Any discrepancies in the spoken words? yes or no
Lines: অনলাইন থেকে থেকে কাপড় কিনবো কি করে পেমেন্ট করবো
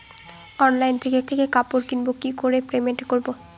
no